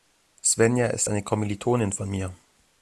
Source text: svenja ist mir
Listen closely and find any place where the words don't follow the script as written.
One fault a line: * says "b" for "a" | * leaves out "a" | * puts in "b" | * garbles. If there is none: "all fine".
* puts in "eine kommilitonin von"